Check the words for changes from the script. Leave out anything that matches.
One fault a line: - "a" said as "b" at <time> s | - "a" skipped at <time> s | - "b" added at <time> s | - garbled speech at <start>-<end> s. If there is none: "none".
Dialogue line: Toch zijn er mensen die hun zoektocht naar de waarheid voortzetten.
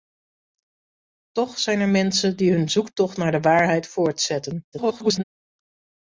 - garbled speech at 4.7-5.2 s